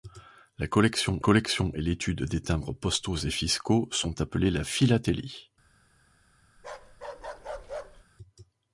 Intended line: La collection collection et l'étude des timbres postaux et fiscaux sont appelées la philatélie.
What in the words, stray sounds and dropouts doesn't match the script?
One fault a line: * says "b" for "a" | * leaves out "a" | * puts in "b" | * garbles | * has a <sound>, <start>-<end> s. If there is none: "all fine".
* has a bark, 6.6-8.1 s